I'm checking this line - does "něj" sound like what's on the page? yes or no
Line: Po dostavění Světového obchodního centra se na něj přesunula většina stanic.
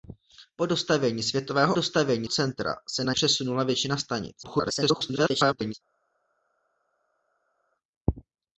no